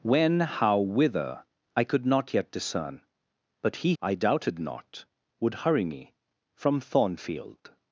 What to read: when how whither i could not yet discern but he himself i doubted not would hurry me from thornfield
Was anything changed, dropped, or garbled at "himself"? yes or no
yes